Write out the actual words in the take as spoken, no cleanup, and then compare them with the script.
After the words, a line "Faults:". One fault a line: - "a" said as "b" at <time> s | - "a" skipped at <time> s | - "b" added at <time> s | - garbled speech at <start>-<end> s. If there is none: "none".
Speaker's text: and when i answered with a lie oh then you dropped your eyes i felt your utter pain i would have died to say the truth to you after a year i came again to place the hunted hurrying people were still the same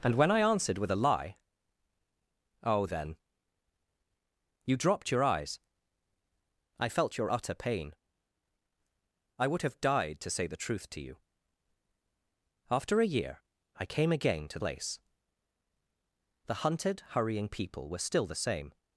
and when i answered with a lie oh then you dropped your eyes i felt your utter pain i would have died to say the truth to you after a year i came again to place the hunted hurrying people were still the same
Faults:
none